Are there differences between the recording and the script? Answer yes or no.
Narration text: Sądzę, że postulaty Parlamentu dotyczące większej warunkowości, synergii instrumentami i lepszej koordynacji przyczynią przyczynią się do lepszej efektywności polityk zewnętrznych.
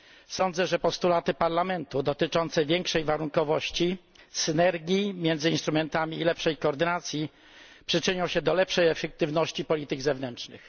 yes